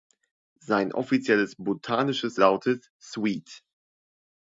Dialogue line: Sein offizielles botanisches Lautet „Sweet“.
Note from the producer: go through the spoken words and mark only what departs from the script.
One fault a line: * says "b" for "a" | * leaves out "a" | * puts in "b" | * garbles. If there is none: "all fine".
all fine